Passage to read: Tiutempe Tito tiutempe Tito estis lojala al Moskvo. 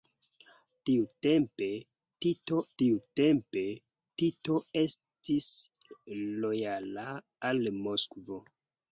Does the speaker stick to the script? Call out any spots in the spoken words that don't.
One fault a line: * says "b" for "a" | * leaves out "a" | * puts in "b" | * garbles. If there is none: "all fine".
all fine